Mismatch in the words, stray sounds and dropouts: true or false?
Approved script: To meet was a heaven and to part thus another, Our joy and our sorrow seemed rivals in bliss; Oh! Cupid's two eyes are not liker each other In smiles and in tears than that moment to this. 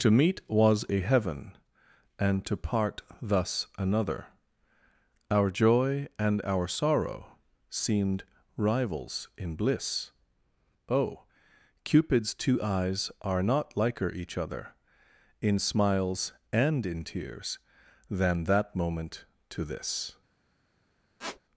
true